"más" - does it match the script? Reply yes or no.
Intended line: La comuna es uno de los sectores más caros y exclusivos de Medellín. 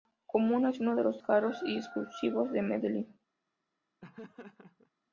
no